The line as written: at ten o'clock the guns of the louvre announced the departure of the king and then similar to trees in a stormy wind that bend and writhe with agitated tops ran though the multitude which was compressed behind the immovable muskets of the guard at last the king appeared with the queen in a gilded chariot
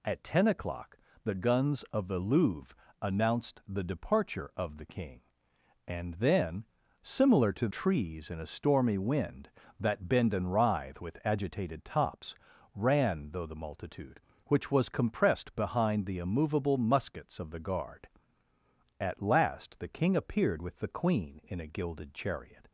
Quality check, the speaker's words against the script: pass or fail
pass